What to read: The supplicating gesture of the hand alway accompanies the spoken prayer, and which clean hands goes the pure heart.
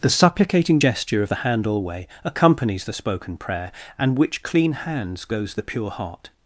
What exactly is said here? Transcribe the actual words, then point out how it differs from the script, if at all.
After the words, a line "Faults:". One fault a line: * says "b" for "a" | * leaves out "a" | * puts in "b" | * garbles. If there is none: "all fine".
The supplicating gesture of the hand alway accompanies the spoken prayer, and which clean hands goes the pure heart.
Faults:
all fine